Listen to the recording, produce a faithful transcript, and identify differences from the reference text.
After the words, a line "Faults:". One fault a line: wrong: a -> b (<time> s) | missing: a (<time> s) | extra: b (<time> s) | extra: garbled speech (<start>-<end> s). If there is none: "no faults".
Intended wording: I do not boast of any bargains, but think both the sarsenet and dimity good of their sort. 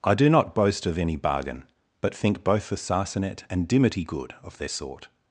I do not boast of any bargain, but think both the sarsenet and dimity good of their sort.
Faults:
wrong: bargains -> bargain (1.1 s)